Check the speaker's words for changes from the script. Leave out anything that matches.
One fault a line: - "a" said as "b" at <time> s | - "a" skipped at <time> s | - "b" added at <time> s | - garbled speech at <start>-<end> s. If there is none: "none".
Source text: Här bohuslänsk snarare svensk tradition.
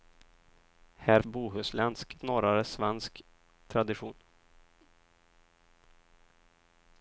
none